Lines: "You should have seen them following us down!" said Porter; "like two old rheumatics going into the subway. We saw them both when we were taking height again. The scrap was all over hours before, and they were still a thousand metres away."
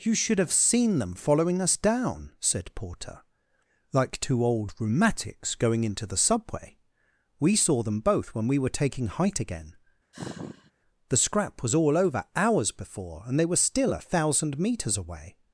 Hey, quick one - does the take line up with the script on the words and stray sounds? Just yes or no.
no